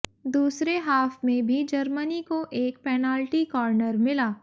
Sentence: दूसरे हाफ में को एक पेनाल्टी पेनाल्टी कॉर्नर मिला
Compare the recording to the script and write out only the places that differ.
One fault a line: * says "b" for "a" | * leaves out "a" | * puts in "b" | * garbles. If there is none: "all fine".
* puts in "भी जर्मनी"
* leaves out "पेनाल्टी"